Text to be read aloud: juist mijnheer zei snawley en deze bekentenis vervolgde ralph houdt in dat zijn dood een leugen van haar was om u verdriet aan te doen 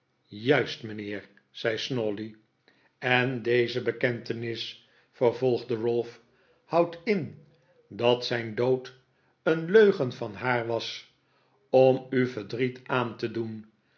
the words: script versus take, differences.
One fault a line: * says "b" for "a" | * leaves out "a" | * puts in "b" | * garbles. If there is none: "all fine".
all fine